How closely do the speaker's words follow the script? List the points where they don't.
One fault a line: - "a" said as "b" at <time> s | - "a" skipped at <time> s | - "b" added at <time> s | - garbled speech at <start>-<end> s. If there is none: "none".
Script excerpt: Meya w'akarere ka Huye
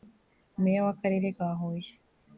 none